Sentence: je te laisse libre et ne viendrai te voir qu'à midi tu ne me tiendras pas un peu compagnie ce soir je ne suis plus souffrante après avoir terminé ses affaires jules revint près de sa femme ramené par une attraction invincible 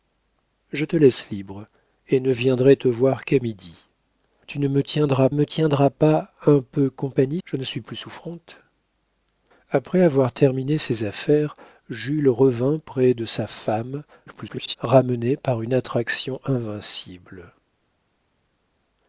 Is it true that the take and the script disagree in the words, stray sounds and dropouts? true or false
true